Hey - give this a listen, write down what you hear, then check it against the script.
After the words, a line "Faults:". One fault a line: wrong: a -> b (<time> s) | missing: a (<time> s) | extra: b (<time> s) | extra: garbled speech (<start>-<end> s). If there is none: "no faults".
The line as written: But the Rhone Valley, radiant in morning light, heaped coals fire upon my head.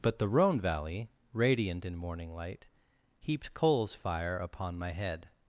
But the Rhone Valley, radiant in morning light, heaped coals fire upon my head.
Faults:
no faults